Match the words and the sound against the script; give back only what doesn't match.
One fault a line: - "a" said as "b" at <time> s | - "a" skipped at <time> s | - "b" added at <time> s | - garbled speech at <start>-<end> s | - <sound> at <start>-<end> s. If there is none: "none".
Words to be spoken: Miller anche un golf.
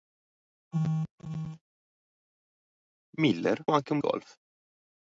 none